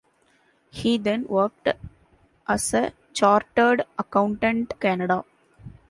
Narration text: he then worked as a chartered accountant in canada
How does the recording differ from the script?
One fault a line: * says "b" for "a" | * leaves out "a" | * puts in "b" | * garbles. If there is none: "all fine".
* leaves out "in"